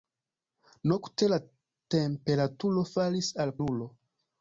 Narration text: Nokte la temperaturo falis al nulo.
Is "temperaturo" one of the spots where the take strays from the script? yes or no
no